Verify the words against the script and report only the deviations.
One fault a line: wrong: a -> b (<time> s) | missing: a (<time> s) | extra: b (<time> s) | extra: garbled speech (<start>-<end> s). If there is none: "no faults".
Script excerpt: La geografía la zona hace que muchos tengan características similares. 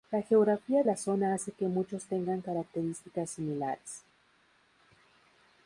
no faults